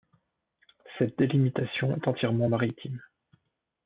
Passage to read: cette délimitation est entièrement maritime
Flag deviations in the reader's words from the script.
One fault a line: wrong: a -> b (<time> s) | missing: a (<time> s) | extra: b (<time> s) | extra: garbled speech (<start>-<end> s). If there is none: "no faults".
no faults